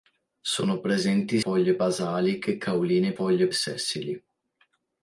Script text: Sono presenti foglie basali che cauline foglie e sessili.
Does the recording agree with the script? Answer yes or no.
yes